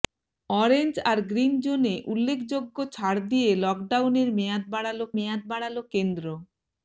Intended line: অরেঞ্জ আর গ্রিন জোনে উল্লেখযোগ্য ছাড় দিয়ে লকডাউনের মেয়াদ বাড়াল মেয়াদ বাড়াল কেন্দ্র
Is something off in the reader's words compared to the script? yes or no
no